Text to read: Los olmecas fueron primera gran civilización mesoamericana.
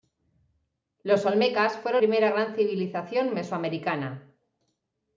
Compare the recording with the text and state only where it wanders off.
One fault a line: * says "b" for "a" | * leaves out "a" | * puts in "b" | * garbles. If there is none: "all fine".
all fine